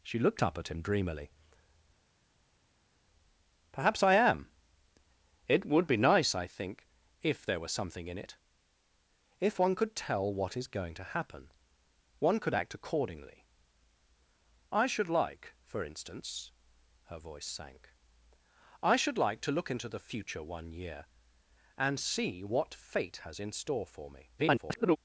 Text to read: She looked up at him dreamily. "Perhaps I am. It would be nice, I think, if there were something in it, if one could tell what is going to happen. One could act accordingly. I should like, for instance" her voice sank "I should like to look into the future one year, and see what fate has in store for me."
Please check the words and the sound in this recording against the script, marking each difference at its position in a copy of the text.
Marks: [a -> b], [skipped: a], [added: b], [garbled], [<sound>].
She looked up at him dreamily. "Perhaps I am. It would be nice, I think, if there were something in it, if one could tell what is going to happen. One could act accordingly. I should like, for instance" her voice sank "I should like to look into the future one year, and see what fate has in store for me." [garbled]